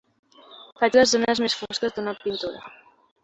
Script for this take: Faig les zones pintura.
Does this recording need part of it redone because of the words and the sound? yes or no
yes